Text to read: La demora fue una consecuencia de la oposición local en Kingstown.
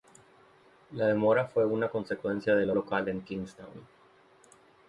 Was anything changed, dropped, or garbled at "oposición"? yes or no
yes